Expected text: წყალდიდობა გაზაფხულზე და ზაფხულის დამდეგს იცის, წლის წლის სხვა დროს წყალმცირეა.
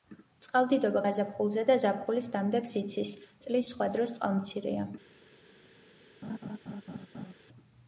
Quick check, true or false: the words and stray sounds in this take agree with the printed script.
false